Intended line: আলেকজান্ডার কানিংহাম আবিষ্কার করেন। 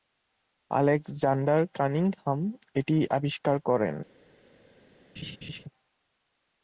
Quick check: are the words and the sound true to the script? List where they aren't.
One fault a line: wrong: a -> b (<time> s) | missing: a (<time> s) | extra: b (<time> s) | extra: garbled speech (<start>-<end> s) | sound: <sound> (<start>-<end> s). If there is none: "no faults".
extra: এটি (2.8 s)
sound: laugh (5.2-5.6 s)